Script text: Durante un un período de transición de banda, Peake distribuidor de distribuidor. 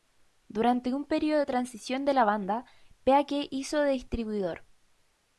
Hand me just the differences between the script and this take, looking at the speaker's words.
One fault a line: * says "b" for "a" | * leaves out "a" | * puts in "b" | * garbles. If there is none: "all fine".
* leaves out "un"
* puts in "la"
* says "hizo" for "distribuidor"